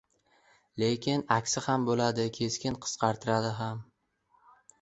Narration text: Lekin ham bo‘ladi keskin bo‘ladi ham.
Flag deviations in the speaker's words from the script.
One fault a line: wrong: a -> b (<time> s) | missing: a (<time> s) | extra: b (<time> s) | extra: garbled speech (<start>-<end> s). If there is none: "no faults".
extra: aksi (1.4 s)
wrong: bo‘ladi -> qisqartiradi (2.9 s)